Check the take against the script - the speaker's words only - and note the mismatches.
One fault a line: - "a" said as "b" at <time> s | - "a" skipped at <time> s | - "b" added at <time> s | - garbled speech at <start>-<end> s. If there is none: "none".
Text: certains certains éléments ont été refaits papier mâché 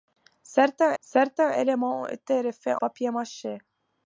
none